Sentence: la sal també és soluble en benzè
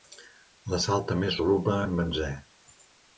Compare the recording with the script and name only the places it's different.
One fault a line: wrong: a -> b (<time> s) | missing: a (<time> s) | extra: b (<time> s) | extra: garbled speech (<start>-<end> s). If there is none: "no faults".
no faults